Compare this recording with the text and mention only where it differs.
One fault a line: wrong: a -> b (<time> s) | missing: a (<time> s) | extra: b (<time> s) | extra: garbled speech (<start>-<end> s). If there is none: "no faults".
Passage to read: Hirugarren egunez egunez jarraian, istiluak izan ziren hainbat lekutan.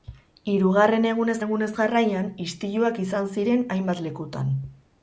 no faults